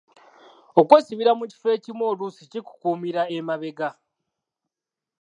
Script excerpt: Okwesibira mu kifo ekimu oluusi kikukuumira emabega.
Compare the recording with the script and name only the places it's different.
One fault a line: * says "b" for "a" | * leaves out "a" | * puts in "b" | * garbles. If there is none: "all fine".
all fine